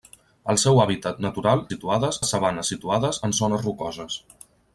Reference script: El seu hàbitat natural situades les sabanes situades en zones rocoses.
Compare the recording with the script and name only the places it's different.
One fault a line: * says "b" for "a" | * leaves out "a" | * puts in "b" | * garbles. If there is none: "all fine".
all fine